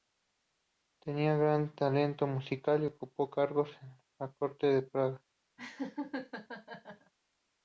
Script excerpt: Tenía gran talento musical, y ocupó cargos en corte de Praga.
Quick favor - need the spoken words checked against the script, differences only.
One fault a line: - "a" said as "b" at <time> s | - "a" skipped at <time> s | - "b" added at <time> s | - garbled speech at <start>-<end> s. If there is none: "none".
- "la" added at 4.2 s